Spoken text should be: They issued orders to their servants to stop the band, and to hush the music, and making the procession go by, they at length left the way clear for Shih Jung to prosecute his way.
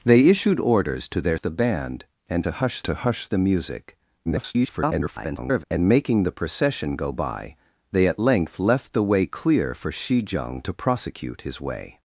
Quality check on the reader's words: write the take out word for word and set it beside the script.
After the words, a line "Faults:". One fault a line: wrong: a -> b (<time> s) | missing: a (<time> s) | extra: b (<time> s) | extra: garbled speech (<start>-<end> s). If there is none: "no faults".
They issued orders to their the band, and to hush to hush the music, [garbled] and making the procession go by, they at length left the way clear for Shih Jung to prosecute his way.
Faults:
missing: servants to stop (1.4 s)
extra: to hush (2.8 s)
extra: garbled speech (4.3-5.6 s)